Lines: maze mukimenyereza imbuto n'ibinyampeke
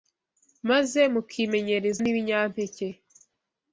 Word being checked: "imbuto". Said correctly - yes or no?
no